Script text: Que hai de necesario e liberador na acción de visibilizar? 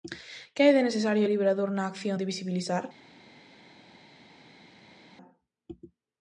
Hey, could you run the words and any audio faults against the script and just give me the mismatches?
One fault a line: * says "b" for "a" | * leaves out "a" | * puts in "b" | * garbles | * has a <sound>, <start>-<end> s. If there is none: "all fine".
all fine